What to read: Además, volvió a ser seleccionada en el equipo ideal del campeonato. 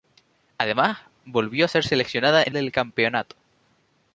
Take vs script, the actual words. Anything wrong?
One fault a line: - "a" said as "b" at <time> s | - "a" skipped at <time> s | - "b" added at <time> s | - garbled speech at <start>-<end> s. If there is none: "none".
- "el equipo ideal" skipped at 2.5 s